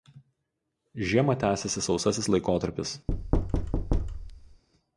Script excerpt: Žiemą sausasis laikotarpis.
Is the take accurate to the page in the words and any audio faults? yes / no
no